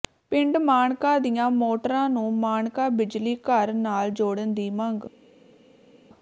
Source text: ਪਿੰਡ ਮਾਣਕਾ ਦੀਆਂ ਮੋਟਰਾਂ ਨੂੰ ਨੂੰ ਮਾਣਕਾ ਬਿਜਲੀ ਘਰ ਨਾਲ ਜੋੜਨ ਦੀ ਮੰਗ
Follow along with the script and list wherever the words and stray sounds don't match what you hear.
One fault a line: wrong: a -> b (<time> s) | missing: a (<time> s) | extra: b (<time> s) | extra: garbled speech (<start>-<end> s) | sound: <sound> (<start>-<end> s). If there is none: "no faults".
missing: ਨੂੰ (2.3 s)